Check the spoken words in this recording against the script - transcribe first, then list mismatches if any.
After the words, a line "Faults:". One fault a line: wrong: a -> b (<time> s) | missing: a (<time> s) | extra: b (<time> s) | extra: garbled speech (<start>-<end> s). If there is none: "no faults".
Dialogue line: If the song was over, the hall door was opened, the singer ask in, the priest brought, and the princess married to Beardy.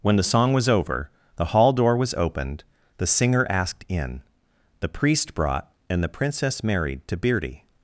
When the song was over, the hall door was opened, the singer asked in, the priest brought, and the princess married to Beardy.
Faults:
wrong: If -> When (0.0 s)
wrong: ask -> asked (3.5 s)